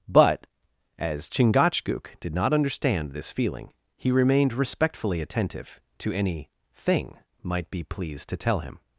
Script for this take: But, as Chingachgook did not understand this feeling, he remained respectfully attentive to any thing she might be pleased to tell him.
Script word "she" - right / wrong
wrong